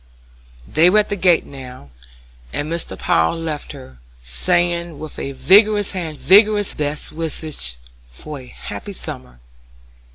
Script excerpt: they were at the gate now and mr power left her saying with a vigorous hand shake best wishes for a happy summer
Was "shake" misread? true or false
true